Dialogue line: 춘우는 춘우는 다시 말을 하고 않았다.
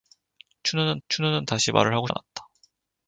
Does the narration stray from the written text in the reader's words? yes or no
no